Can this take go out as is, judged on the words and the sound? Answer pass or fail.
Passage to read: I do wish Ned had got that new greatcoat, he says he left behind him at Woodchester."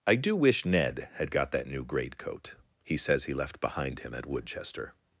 pass